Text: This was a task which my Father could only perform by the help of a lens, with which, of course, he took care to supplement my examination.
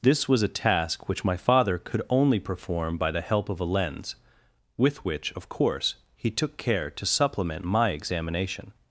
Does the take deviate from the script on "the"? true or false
false